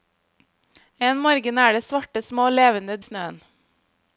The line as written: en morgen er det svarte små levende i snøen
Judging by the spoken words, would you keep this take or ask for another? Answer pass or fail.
pass